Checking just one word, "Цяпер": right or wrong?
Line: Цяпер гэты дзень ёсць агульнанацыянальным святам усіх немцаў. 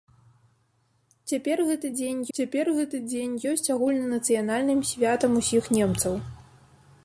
right